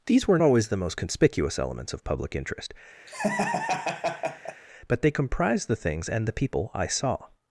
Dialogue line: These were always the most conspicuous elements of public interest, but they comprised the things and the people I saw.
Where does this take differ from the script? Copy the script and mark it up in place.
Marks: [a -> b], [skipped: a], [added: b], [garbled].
These were always the most conspicuous elements of public interest, but they comprised the things and the people I saw.